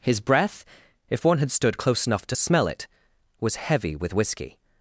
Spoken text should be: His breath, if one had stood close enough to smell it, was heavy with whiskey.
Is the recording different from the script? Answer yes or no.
no